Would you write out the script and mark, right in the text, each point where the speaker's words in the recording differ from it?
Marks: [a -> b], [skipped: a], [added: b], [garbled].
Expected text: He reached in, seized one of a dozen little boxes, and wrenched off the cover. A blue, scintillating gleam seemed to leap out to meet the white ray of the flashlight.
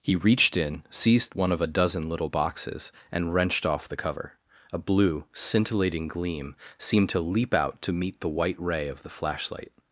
He reached in, seized one of a dozen little boxes, and wrenched off the cover. A blue, scintillating gleam seemed to leap out to meet the white ray of the flashlight.